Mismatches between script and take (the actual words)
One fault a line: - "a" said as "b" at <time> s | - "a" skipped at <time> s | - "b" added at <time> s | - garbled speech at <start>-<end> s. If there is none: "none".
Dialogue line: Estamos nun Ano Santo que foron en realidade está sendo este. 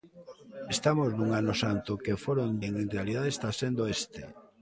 none